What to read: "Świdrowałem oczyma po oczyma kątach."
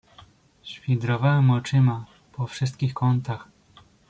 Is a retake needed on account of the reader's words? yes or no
yes